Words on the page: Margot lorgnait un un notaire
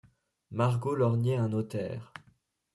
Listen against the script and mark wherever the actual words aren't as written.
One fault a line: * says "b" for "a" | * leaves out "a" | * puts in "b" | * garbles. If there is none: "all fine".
* leaves out "un"